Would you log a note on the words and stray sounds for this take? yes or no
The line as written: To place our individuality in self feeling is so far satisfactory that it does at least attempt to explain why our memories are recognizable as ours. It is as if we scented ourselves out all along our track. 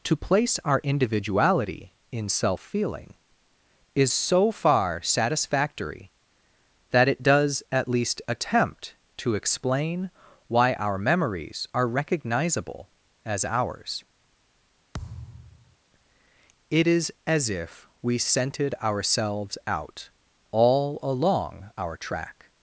yes